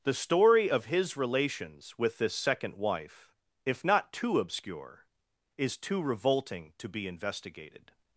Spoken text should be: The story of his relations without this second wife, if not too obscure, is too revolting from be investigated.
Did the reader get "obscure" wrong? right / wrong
right